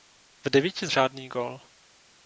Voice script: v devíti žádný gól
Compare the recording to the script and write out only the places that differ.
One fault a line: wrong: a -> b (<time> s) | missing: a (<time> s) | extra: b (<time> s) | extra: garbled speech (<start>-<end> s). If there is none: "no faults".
no faults